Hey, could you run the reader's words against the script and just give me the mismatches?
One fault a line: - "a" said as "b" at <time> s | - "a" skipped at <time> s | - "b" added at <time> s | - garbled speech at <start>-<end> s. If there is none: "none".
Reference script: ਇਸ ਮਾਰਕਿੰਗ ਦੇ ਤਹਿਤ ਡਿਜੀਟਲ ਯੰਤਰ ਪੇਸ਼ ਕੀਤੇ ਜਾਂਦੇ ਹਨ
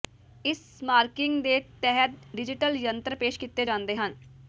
none